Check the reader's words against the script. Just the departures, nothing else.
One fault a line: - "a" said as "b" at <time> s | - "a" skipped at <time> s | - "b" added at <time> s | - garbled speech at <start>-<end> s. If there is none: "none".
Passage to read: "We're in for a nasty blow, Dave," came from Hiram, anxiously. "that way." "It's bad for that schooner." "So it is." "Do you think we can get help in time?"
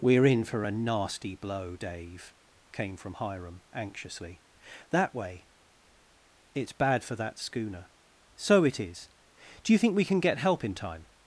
none